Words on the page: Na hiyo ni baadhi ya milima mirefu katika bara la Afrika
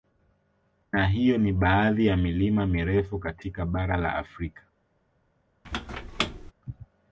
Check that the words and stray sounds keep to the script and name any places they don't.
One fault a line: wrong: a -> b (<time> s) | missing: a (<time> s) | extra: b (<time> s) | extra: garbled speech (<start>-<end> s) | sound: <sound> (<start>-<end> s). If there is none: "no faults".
sound: squeak (5.6-6.5 s)